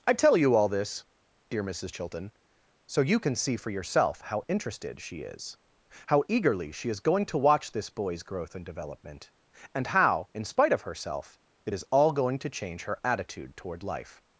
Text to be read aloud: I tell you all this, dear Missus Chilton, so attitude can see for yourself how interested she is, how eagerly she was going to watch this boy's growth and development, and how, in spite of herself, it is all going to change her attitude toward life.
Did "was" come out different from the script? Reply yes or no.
yes